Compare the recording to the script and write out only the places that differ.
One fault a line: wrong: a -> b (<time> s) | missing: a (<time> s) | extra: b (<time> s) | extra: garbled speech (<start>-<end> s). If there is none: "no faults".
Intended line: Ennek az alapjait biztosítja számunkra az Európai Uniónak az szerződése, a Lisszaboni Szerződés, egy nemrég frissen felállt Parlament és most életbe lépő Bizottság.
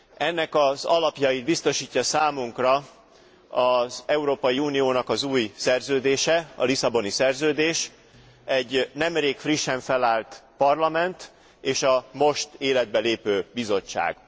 extra: új (5.2 s)
extra: a (11.8 s)